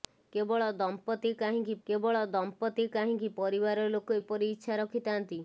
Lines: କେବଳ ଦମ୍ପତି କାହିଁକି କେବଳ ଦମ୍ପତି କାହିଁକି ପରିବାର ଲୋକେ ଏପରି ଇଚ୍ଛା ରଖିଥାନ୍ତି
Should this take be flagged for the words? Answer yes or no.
no